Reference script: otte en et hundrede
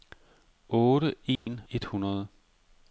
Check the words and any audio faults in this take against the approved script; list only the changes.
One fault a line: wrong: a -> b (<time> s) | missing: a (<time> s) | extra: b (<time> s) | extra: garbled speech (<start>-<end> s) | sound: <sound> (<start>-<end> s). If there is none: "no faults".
sound: dropout (1.4-1.5 s)